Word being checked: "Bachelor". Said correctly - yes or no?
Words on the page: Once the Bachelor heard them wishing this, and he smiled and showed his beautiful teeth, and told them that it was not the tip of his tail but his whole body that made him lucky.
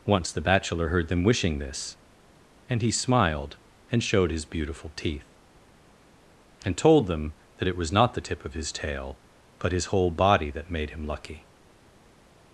yes